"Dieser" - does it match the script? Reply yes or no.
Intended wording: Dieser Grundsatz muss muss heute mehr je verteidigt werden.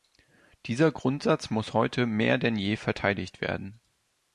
yes